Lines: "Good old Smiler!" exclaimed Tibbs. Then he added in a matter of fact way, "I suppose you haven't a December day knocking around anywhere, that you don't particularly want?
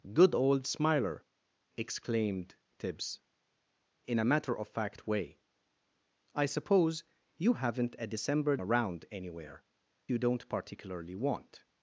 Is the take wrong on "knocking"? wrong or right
wrong